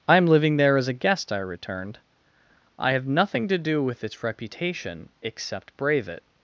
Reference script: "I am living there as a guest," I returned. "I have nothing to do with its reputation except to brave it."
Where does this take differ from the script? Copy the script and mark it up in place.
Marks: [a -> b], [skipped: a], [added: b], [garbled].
"I am living there as a guest," I returned. "I have nothing to do with its reputation except [skipped: to] brave it."